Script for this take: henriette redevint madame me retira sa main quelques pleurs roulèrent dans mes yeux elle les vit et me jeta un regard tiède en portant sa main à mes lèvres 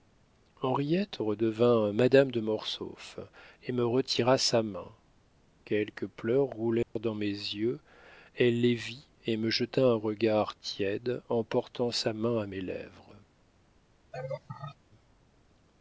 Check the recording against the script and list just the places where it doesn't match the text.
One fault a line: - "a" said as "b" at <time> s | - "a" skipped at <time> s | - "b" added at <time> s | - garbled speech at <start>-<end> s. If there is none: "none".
- "de mortsauf et" added at 2.3 s